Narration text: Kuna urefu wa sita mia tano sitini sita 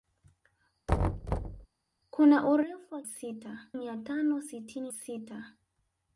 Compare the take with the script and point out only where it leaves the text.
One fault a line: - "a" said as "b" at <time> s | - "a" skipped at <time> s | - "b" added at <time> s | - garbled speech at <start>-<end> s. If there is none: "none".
none